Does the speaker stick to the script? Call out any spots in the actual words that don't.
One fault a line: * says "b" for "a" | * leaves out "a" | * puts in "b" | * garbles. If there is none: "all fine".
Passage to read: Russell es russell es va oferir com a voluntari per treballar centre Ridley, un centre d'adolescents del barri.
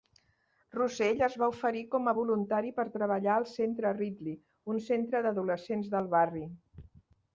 * leaves out "russell es"
* puts in "al"